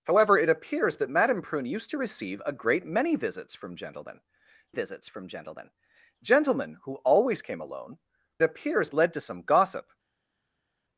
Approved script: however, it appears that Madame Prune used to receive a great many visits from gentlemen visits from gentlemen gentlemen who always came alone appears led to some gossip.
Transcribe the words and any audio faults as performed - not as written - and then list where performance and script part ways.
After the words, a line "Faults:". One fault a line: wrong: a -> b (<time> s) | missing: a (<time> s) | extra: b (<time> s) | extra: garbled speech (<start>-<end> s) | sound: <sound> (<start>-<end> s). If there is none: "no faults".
however, it appears that Madame Prune used to receive a great many visits from gentlemen visits from gentlemen gentlemen who always came alone appears led to some gossip.
Faults:
no faults